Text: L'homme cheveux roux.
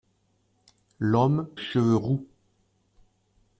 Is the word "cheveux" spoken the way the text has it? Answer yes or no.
yes